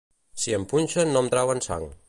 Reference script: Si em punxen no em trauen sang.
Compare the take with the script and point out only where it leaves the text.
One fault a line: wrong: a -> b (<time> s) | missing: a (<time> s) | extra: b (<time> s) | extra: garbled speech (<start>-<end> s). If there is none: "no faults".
no faults